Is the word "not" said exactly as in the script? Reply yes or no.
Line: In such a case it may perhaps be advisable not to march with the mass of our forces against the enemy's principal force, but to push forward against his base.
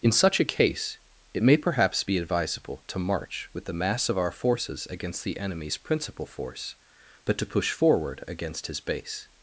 no